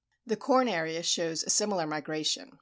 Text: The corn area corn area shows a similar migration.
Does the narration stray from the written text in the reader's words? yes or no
yes